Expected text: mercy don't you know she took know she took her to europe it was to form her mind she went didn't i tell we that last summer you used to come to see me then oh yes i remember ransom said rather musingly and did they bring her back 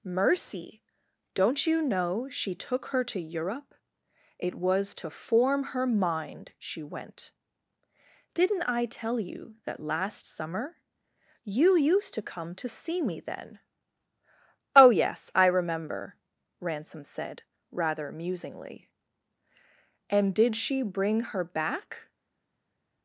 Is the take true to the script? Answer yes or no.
no